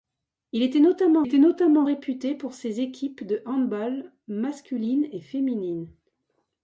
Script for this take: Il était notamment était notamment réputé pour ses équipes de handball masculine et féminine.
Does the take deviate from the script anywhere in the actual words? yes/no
no